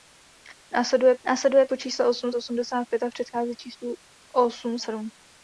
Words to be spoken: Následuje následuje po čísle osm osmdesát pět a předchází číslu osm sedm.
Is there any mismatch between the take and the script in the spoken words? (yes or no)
no